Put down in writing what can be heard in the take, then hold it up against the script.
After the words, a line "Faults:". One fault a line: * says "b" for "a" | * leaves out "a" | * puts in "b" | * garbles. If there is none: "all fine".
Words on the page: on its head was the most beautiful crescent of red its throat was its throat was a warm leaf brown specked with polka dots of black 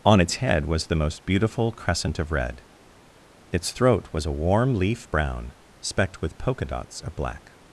on its head was the most beautiful crescent of red its throat was a warm leaf brown specked with polka dots of black
Faults:
* leaves out "its throat was"